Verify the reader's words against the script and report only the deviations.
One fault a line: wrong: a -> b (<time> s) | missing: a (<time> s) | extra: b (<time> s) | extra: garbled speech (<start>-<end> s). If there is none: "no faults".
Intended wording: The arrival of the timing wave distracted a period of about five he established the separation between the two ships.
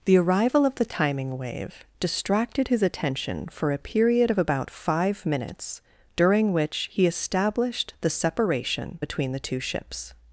extra: his attention for (2.7 s)
extra: minutes during which (5.3 s)